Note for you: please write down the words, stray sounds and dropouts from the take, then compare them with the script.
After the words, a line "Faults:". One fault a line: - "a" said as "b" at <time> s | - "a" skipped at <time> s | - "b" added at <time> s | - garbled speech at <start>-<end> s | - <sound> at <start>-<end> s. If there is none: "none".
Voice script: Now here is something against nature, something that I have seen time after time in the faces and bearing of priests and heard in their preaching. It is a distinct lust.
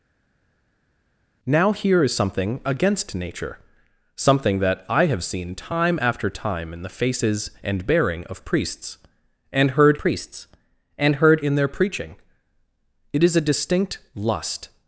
Now here is something against nature, something that I have seen time after time in the faces and bearing of priests and heard priests and heard in their preaching. It is a distinct lust.
Faults:
- "priests and heard" added at 10.0 s